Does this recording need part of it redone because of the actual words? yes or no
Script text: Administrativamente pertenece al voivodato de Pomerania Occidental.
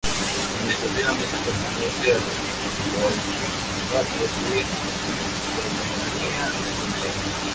no